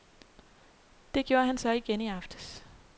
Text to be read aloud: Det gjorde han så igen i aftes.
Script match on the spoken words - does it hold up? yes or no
yes